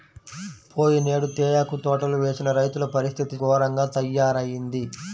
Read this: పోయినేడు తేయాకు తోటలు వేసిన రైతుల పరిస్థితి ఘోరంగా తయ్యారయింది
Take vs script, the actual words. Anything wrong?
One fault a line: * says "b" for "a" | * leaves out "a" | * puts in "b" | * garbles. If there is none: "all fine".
all fine